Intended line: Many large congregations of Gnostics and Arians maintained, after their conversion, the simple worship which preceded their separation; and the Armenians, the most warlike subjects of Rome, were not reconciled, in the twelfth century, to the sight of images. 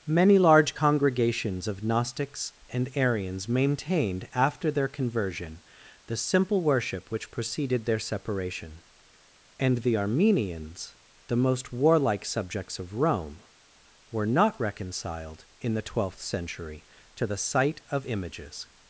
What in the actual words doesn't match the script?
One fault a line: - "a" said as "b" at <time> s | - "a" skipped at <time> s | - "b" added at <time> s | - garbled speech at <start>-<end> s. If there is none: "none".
none